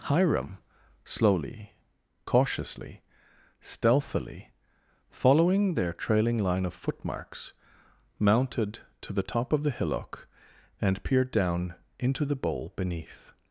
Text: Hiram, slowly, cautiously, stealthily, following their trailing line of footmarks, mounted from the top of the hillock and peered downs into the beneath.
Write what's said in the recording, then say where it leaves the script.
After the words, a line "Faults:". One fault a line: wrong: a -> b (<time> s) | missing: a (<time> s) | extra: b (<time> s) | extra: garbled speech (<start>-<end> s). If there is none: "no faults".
Hiram, slowly, cautiously, stealthily, following their trailing line of footmarks, mounted to the top of the hillock and peered down into the bowl beneath.
Faults:
wrong: from -> to (9.0 s)
wrong: downs -> down (11.3 s)
extra: bowl (12.3 s)